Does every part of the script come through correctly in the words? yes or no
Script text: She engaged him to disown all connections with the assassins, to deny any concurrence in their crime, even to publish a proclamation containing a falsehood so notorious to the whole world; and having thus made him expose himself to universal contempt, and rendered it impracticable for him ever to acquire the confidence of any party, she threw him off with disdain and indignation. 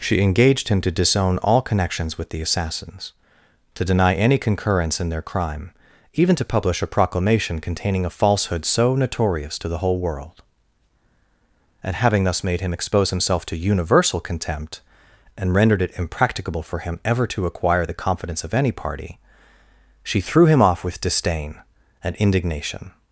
yes